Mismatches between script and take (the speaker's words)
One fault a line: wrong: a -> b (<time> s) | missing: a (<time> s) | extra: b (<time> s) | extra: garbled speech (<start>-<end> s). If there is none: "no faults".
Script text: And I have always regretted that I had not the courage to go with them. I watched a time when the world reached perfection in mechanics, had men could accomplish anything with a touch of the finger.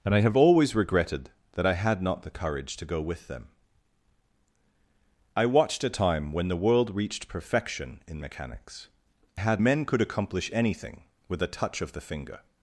no faults